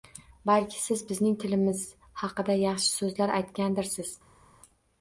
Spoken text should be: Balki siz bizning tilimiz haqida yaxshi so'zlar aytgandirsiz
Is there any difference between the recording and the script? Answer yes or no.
no